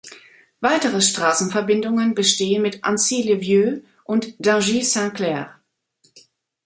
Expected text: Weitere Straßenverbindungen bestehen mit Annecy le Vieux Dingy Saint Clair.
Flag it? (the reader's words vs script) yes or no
yes